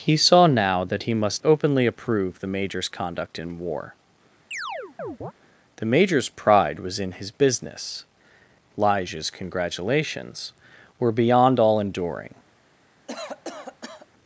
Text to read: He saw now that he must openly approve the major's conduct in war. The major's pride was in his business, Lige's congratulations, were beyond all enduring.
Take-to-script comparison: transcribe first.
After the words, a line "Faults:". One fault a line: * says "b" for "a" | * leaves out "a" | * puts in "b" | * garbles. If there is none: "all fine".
He saw now that he must openly approve the major's conduct in war. The major's pride was in his business, Lige's congratulations, were beyond all enduring.
Faults:
all fine